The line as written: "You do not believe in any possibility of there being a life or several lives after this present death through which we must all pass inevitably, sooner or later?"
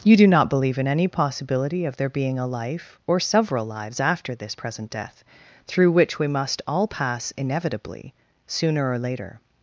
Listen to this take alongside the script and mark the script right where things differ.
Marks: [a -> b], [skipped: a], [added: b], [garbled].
"You do not believe in any possibility of there being a life or several lives after this present death through which we must all pass inevitably, sooner or later?"